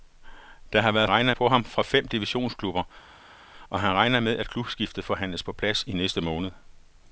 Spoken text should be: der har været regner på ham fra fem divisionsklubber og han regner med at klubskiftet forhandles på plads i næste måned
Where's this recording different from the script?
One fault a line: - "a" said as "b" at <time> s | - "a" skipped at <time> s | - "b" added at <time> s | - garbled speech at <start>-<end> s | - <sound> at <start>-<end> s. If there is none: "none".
none